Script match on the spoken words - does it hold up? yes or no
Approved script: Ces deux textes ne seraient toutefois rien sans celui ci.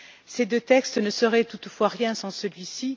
yes